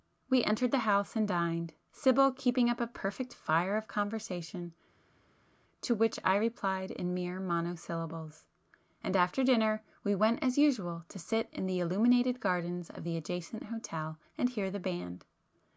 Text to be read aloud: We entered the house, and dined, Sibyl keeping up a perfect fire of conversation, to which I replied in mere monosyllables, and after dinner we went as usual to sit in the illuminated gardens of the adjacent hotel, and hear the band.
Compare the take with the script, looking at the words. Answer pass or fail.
pass